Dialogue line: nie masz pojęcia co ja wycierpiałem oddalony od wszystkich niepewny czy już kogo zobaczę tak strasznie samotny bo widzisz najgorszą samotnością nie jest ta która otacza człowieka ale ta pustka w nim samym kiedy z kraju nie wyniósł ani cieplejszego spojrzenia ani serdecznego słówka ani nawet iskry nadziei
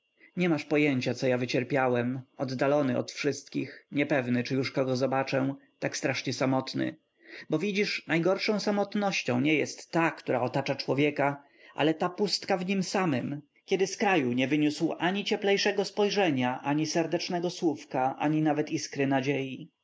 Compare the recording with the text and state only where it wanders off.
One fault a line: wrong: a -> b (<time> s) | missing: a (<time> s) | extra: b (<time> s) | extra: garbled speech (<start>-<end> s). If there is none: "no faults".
no faults